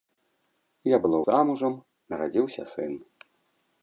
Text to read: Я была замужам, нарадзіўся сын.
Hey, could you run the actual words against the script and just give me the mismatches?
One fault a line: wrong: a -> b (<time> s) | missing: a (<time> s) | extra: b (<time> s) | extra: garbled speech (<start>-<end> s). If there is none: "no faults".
no faults